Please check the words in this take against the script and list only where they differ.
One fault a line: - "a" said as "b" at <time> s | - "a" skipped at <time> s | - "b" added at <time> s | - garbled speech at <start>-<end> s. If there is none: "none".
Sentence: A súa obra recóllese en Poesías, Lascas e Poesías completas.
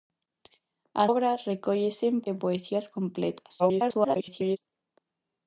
- "súa" skipped at 1.1 s
- "Poesías Lascas" skipped at 2.2 s
- garbled speech at 3.6-4.6 s